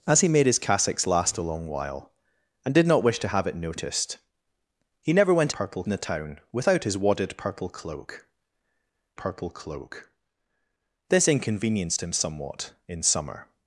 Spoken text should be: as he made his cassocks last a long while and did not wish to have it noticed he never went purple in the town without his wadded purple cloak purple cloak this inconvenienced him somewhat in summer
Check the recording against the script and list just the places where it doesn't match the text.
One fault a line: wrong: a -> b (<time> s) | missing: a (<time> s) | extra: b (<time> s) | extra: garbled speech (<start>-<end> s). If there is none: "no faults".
no faults